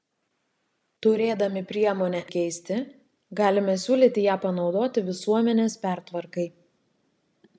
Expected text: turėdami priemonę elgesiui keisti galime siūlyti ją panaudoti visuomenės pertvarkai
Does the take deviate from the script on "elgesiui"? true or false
true